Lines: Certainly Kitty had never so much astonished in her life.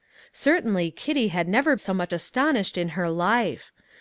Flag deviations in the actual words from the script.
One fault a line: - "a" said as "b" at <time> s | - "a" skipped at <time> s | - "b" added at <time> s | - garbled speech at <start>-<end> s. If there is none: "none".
none